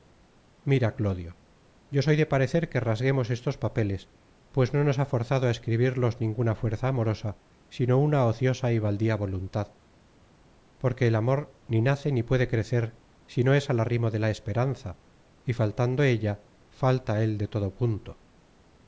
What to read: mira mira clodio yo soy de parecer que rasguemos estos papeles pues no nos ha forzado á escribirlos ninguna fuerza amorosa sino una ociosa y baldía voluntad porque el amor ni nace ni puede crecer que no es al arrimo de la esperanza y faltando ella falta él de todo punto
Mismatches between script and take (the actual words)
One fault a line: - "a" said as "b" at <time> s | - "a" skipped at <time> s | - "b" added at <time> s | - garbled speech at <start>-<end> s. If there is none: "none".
- "mira" skipped at 0.9 s
- "que" said as "si" at 13.3 s